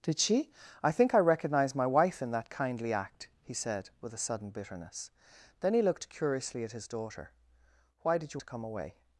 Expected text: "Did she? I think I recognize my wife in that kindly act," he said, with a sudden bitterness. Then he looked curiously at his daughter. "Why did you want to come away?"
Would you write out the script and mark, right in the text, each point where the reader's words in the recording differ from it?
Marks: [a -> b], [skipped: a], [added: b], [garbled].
"Did she? I think I recognize my wife in that kindly act," he said, with a sudden bitterness. Then he looked curiously at his daughter. "Why did you [skipped: want] to come away?"